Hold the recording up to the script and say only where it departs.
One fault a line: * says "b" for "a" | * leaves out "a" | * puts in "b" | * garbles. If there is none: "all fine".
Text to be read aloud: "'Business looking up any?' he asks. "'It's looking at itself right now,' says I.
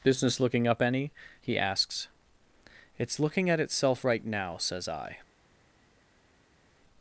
all fine